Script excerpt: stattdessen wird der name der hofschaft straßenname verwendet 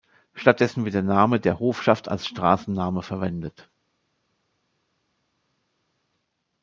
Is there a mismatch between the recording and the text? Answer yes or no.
yes